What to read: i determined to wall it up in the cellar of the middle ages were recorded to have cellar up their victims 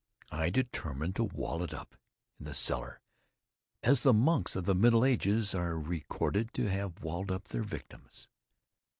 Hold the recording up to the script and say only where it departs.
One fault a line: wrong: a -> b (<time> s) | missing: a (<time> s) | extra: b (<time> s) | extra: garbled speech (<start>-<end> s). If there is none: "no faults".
extra: as the monks (3.8 s)
wrong: were -> are (5.5 s)
wrong: cellar -> walled (7.0 s)